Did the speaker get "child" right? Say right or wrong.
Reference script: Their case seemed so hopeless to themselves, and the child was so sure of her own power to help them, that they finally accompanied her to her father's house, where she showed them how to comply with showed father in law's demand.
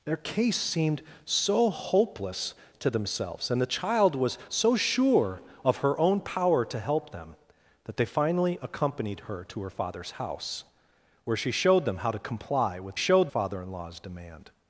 right